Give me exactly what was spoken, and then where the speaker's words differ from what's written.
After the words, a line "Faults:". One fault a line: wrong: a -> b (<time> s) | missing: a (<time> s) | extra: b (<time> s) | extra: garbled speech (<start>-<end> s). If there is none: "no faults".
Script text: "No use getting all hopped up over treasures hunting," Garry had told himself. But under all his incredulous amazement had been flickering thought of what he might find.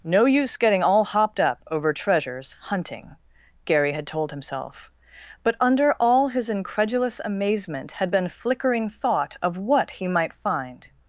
"No use getting all hopped up over treasures hunting," Garry had told himself. But under all his incredulous amazement had been flickering thought of what he might find.
Faults:
no faults